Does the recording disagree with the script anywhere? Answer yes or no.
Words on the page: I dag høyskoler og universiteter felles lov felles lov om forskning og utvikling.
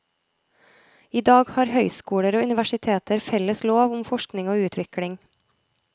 yes